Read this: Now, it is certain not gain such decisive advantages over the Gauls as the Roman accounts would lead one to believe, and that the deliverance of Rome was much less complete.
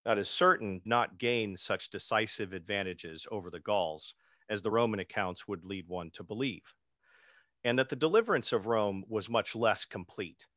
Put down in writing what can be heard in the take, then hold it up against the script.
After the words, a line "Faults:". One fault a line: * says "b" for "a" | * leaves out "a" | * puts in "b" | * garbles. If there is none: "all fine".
Now, it is certain not gain such decisive advantages over the Gauls as the Roman accounts would lead one to believe, and that the deliverance of Rome was much less complete.
Faults:
all fine